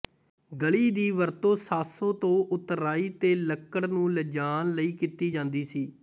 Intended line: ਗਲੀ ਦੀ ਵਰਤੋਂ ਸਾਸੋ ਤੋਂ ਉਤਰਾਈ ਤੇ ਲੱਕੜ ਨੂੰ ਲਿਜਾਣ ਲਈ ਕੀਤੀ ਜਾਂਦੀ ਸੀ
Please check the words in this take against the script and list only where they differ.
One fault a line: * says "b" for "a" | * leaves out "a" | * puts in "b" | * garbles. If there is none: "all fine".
all fine